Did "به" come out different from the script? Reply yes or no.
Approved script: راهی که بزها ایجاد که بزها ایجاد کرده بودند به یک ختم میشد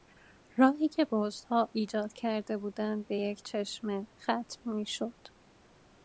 no